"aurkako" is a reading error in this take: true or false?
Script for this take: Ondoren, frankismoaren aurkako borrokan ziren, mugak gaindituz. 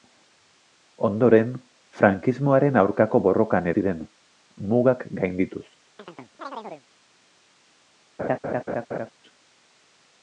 false